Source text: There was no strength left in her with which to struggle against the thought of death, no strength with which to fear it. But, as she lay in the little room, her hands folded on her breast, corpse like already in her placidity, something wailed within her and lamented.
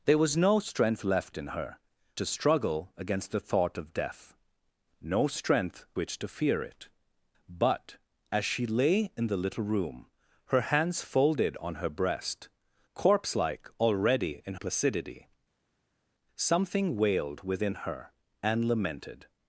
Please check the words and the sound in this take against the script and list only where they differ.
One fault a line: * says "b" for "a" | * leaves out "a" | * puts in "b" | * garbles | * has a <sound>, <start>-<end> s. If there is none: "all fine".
* leaves out "with which"
* leaves out "with"
* leaves out "her"